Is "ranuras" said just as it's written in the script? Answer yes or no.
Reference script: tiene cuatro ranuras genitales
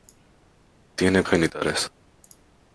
no